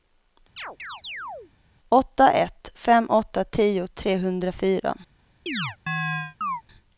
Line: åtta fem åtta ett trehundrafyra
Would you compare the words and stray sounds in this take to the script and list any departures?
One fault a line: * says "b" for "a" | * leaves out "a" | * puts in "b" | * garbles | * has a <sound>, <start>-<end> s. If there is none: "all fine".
* has a chirp, 0.6-1.5 s
* puts in "ett"
* says "tio" for "ett"
* has a chirp, 5.5-6.6 s